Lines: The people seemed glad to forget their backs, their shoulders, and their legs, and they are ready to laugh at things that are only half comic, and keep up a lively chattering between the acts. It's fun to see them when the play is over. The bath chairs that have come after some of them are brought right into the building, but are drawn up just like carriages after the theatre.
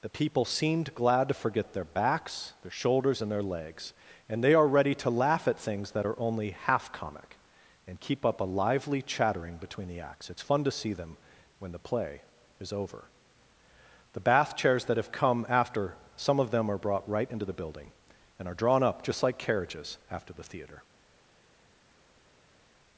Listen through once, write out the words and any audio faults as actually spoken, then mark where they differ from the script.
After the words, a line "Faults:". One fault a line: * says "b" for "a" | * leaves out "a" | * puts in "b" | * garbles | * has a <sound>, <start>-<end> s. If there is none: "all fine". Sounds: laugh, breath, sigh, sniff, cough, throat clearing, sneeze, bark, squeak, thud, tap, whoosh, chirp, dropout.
The people seemed glad to forget their backs, their shoulders, and their legs, and they are ready to laugh at things that are only half comic, and keep up a lively chattering between the acts. It's fun to see them when the play is over. The bath chairs that have come after some of them are brought right into the building, and are drawn up just like carriages after the theatre.
Faults:
* says "and" for "but"